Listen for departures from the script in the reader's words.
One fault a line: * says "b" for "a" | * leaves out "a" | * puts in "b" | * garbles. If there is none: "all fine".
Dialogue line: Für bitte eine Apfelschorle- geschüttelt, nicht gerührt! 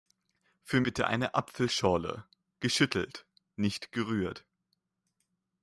all fine